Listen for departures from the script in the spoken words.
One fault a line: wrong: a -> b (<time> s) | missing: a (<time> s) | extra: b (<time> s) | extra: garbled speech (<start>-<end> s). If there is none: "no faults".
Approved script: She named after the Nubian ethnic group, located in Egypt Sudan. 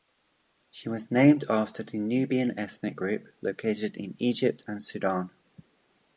extra: was (0.9 s)
extra: and (4.6 s)